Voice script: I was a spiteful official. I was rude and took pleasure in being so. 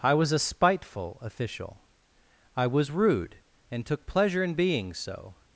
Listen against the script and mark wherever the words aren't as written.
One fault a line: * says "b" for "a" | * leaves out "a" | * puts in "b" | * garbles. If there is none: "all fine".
all fine